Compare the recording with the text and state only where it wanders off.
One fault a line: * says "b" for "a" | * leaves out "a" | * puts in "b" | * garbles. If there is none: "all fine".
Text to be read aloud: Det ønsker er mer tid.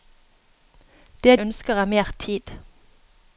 all fine